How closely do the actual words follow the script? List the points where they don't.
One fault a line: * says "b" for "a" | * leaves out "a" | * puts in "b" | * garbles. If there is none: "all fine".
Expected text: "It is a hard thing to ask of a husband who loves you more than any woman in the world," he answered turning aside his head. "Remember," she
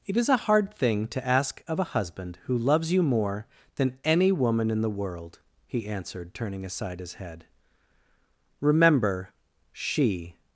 all fine